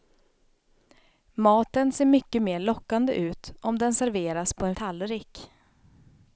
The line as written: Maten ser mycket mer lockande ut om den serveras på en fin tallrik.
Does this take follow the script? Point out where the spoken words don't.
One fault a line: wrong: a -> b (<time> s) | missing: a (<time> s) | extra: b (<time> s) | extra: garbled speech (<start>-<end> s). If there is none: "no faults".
missing: fin (4.8 s)